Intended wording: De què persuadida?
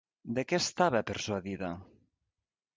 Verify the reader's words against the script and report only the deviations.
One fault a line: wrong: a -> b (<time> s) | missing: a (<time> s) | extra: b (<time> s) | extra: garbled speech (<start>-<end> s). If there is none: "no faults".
extra: estava (0.6 s)